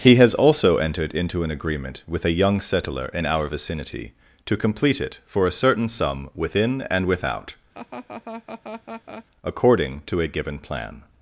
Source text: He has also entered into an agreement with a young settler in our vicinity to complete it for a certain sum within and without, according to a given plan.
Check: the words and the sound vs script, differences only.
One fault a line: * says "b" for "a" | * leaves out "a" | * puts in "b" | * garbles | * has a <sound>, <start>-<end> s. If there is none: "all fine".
* has a laugh, 7.7-9.3 s